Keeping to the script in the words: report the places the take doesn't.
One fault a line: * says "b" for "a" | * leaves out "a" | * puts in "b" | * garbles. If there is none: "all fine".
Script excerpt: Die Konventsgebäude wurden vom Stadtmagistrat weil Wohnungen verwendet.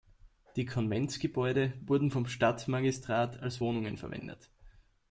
* says "als" for "weil"